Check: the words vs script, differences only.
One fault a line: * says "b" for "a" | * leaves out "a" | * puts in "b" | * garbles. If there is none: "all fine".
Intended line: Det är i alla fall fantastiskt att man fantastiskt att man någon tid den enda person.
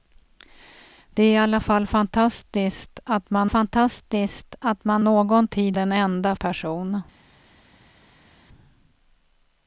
all fine